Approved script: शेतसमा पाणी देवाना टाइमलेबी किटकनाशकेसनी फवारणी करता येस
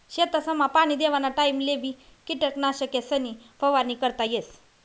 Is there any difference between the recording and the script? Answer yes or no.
no